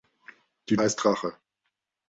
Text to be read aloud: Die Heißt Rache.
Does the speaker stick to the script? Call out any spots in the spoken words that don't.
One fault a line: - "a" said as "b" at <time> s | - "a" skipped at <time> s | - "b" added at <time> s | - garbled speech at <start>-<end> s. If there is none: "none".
none